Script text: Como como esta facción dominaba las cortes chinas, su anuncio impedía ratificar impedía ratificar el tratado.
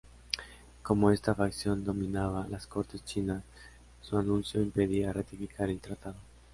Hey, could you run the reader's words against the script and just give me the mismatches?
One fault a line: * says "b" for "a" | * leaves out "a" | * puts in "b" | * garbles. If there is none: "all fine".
* leaves out "como"
* leaves out "impedía ratificar"